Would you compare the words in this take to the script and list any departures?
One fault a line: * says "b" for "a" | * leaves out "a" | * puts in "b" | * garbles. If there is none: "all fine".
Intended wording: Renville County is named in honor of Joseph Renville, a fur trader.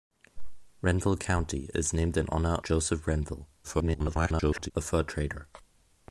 * leaves out "of"
* garbles